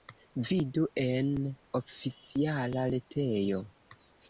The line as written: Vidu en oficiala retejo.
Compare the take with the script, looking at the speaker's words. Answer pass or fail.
pass